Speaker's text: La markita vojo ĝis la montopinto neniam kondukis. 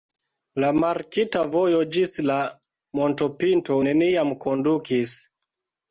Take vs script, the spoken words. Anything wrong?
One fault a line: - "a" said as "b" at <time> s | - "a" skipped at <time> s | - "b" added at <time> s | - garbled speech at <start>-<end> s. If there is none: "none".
none